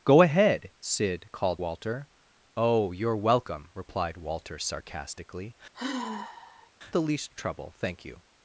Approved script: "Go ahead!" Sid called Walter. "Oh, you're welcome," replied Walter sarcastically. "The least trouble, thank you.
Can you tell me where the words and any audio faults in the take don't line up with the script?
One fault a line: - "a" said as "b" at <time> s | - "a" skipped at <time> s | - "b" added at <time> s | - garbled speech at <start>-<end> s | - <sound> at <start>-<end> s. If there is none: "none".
- sigh at 5.7-6.7 s